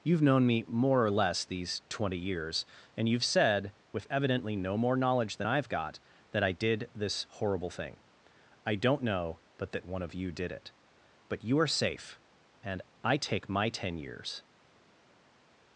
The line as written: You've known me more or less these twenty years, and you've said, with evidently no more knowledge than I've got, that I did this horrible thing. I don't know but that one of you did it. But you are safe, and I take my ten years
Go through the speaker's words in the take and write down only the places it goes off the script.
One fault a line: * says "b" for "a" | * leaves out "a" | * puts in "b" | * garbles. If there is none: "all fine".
all fine